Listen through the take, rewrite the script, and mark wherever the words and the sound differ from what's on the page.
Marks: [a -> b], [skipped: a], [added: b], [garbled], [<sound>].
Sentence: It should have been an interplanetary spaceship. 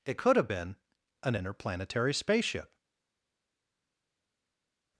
It [should -> could] have been an interplanetary spaceship.